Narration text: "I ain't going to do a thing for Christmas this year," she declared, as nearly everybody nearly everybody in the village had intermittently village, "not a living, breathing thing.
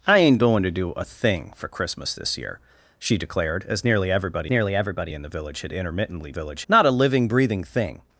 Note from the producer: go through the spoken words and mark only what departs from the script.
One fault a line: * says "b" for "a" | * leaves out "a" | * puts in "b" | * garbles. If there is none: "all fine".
all fine